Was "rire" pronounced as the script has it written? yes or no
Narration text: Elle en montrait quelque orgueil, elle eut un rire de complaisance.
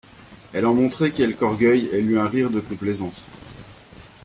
yes